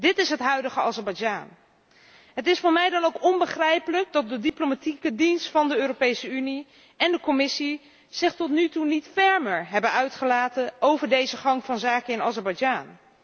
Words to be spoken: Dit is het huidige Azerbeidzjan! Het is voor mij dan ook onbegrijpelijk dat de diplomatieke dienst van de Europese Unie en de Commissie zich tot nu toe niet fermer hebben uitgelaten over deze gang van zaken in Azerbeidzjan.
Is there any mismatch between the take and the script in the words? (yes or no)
no